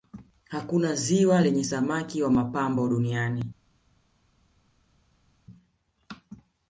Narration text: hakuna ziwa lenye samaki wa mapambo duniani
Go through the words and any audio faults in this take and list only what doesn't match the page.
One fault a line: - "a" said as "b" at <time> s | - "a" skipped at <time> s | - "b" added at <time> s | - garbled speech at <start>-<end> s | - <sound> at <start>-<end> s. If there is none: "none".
none